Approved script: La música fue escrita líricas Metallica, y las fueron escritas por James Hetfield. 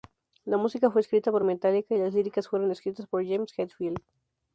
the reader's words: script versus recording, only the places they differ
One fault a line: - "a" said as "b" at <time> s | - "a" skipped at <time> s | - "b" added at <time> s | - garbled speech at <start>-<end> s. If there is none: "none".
- "líricas" said as "por" at 1.3 s
- "líricas" added at 2.1 s